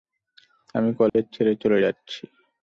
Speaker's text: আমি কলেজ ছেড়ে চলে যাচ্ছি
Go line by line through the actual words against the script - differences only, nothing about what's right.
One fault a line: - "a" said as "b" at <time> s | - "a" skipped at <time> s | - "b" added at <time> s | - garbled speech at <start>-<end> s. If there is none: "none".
none